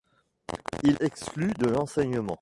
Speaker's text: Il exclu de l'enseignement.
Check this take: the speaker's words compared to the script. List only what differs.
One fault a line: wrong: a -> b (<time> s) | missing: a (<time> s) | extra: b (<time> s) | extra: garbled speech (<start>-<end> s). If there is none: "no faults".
no faults